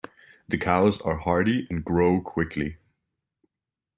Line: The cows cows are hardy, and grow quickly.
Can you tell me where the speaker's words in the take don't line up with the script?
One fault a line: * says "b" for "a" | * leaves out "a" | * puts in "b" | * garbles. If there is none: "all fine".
* leaves out "cows"